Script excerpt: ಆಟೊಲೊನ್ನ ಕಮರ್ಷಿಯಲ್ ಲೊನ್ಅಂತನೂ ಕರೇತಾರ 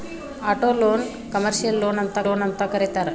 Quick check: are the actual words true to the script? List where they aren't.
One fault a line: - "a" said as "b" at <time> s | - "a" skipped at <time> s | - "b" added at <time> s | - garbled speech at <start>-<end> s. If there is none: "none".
- "ಲೊನ್ಅಂತನೂ" added at 2.2 s